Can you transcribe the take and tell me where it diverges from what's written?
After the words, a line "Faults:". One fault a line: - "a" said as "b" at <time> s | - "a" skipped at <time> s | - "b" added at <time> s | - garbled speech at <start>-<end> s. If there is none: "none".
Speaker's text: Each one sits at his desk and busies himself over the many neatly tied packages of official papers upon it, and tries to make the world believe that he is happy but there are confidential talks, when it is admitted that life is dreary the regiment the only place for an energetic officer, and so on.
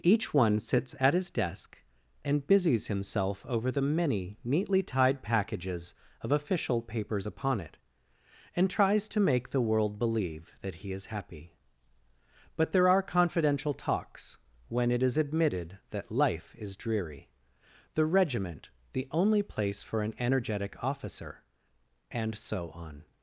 Each one sits at his desk and busies himself over the many neatly tied packages of official papers upon it, and tries to make the world believe that he is happy but there are confidential talks, when it is admitted that life is dreary the regiment the only place for an energetic officer, and so on.
Faults:
none